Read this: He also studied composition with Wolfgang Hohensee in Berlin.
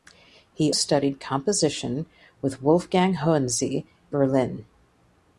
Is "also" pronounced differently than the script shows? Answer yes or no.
yes